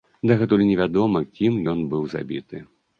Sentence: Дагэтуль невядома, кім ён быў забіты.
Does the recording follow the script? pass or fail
pass